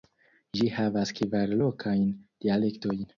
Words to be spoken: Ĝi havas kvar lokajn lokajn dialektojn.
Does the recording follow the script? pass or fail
fail